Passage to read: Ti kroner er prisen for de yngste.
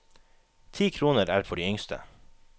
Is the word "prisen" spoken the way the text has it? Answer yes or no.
no